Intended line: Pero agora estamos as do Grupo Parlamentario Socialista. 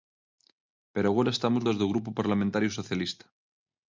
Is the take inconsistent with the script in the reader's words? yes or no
no